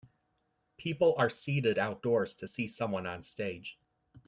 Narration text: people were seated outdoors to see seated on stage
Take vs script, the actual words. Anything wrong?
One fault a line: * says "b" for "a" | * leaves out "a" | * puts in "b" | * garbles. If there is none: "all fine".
* says "are" for "were"
* says "someone" for "seated"